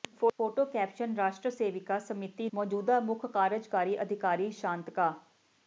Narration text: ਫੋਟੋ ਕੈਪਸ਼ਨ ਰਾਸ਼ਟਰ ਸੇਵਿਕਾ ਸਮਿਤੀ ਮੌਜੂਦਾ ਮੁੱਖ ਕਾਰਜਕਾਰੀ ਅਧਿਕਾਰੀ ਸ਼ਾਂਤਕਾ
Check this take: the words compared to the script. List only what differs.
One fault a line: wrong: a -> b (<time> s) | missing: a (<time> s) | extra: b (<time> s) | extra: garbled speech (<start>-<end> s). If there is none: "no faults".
no faults